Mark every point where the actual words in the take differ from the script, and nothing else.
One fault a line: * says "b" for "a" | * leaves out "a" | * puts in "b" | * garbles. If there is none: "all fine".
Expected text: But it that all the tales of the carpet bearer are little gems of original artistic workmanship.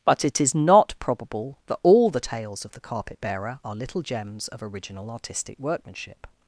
* puts in "is not probable"